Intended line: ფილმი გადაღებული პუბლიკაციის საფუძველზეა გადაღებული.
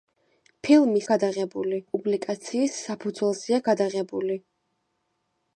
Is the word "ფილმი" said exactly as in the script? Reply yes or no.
yes